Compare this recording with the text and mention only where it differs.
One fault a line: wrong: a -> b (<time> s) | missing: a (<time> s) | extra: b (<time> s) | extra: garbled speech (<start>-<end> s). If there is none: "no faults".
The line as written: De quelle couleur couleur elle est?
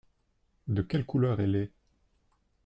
missing: couleur (1.4 s)